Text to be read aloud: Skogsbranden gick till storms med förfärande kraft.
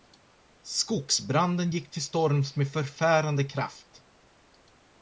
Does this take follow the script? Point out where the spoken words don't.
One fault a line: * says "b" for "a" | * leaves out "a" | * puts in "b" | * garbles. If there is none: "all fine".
all fine